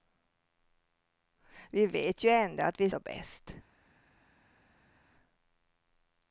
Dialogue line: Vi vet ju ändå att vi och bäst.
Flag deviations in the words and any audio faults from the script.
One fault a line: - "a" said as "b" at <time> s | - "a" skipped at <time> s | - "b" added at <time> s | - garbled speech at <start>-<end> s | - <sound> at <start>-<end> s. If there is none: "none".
none